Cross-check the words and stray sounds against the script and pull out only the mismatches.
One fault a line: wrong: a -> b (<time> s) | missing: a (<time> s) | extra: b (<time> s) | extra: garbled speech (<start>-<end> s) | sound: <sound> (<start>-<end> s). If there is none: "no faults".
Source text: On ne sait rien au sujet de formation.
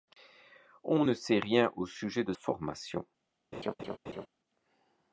sound: laugh (3.5-4.3 s)